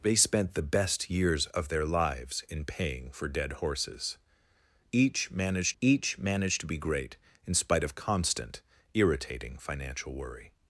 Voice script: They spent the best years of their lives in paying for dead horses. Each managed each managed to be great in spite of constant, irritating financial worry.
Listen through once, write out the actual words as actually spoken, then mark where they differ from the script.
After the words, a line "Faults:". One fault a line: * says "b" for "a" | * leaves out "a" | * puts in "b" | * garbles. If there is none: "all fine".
They spent the best years of their lives in paying for dead horses. Each managed each managed to be great in spite of constant, irritating financial worry.
Faults:
all fine